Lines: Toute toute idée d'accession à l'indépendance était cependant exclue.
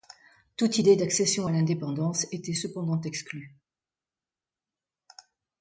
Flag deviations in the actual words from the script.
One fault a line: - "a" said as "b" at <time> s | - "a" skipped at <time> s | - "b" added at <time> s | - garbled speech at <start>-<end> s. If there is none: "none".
- "toute" skipped at 0.8 s